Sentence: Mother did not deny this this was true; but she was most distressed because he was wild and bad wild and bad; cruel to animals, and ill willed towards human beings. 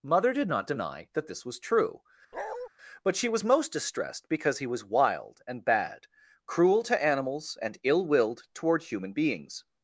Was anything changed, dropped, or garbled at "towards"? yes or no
yes